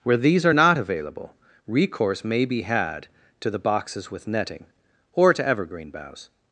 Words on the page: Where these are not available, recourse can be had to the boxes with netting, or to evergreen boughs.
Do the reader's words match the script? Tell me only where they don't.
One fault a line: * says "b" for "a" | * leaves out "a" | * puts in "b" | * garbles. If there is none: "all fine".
* says "may" for "can"